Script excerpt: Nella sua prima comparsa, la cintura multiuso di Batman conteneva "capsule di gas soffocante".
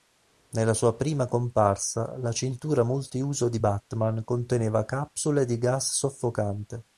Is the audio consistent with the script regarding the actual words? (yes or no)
yes